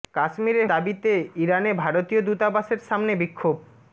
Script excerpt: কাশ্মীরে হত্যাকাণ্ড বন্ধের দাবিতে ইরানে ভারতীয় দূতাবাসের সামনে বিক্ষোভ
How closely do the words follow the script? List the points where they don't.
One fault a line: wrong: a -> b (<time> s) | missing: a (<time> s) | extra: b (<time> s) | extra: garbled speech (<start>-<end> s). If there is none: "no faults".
missing: হত্যাকাণ্ড বন্ধের (0.6 s)